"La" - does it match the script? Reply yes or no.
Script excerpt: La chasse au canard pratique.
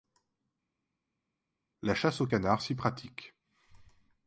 yes